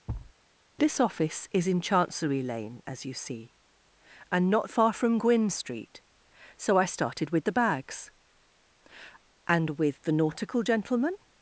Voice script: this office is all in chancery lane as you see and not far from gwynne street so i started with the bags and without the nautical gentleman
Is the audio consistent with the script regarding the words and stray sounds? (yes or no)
no